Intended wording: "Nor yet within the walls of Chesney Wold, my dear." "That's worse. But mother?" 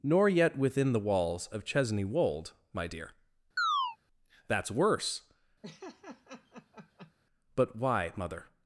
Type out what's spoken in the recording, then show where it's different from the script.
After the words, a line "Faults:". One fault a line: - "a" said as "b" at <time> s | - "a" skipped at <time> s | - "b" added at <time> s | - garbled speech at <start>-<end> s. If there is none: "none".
"Nor yet within the walls of Chesney Wold, my dear." "That's worse. But why, mother?"
Faults:
- "why" added at 7.7 s